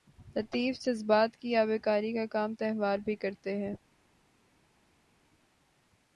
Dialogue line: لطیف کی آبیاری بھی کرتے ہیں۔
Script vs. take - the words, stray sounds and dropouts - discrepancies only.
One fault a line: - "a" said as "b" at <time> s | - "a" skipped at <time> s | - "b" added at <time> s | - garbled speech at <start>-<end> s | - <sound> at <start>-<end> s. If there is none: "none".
- "جذبات" added at 0.8 s
- "کا کام تہوار" added at 2.1 s